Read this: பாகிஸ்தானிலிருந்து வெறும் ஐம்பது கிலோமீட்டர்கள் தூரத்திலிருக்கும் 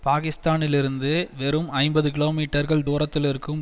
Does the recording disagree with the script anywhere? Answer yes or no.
no